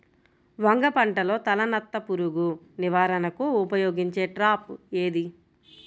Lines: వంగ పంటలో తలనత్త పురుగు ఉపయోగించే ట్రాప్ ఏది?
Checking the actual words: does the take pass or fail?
fail